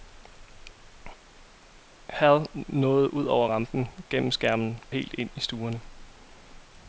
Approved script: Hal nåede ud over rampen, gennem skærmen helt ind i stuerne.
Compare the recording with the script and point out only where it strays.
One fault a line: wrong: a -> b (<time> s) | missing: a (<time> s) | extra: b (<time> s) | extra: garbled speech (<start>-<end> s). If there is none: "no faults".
no faults